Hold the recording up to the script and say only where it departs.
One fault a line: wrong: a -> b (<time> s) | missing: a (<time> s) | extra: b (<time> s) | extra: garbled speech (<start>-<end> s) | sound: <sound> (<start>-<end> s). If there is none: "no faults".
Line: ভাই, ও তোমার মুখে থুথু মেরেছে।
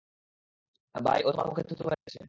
sound: dropout (1.9-2.1 s)